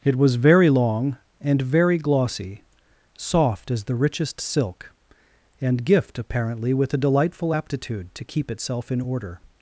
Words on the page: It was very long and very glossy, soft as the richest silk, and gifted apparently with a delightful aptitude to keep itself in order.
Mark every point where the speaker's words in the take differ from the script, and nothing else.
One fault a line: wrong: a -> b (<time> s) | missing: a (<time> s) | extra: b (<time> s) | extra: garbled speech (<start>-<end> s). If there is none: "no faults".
wrong: gifted -> gift (5.8 s)